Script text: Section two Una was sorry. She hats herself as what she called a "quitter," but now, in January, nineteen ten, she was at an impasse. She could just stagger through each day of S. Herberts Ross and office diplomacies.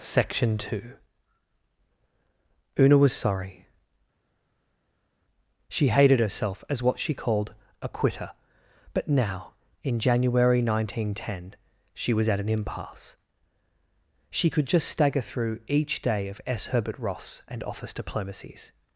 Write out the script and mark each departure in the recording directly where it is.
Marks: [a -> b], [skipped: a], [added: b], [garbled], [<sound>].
Section two Una was sorry. She [hats -> hated] herself as what she called a "quitter," but now, in January, nineteen ten, she was at an impasse. She could just stagger through each day of S. [Herberts -> Herbert] Ross and office diplomacies.